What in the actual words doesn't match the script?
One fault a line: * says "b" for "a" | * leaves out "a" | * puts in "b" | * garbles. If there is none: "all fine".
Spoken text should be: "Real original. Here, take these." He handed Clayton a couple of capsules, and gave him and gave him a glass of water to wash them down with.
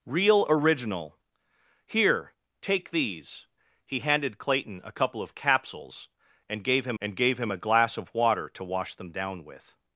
all fine